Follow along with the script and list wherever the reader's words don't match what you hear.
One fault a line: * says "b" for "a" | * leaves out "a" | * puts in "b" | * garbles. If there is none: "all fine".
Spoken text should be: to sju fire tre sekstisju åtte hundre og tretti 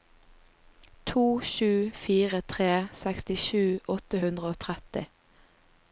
all fine